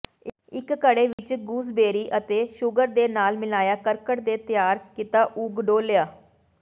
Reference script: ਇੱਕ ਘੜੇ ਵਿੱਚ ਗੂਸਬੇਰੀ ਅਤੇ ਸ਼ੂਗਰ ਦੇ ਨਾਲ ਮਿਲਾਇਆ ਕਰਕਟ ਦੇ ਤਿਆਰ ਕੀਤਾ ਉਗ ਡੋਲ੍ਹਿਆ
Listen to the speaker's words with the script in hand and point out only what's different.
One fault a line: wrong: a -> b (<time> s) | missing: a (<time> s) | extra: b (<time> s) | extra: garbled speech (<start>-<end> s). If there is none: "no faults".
no faults